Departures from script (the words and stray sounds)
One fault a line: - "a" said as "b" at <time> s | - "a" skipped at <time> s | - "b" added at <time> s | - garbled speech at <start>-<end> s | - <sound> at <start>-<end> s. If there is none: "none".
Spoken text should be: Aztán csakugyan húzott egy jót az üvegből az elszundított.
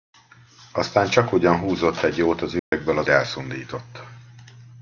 - dropout at 2.6-2.7 s